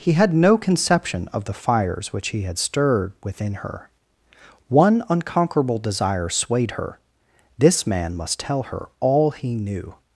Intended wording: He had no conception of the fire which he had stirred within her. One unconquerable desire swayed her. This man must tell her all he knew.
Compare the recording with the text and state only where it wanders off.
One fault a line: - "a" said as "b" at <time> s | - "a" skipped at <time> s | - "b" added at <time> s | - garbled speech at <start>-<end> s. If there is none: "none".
- "fire" said as "fires" at 1.5 s